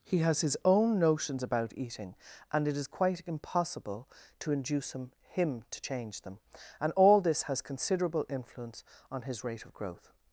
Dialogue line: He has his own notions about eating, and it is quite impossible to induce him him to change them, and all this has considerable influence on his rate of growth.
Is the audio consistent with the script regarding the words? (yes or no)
yes